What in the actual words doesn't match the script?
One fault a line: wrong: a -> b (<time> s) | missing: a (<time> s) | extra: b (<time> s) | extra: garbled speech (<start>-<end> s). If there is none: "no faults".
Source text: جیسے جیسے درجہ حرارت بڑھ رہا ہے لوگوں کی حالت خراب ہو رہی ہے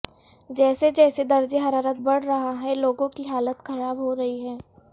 no faults